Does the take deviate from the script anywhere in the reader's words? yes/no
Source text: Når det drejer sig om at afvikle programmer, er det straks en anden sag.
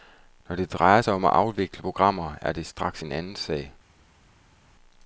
no